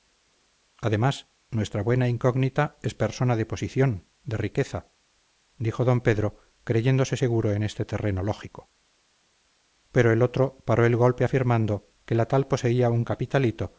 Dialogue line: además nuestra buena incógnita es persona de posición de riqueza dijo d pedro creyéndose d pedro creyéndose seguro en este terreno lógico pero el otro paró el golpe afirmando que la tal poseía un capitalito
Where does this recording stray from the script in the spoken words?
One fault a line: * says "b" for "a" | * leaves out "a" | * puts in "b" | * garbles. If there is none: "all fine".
* leaves out "d pedro creyéndose"